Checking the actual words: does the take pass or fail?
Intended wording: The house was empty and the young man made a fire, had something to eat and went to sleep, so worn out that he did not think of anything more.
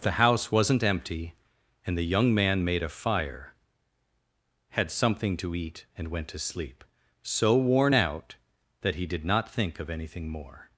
fail